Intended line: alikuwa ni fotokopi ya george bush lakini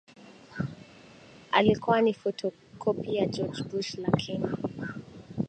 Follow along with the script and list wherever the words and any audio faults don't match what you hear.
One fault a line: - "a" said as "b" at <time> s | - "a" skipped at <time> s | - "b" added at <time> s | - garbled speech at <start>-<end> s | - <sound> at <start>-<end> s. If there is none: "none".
none